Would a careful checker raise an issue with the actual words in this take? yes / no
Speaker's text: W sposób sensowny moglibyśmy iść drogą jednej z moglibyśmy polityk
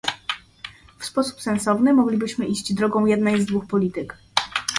yes